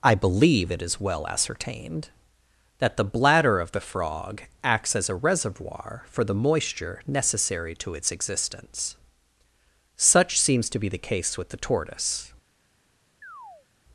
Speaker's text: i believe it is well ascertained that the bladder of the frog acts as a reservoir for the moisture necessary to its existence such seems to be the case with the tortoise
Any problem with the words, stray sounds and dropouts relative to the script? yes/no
yes